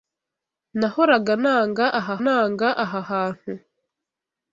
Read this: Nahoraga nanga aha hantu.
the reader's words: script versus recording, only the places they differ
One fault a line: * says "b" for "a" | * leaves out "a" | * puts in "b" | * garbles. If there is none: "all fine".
* puts in "nanga aha"